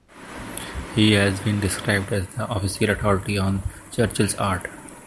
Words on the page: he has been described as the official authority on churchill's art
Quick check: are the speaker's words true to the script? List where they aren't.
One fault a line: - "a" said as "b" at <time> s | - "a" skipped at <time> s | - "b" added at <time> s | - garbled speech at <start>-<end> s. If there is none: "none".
none